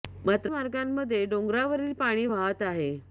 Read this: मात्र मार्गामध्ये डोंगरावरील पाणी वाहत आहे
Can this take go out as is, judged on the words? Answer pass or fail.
pass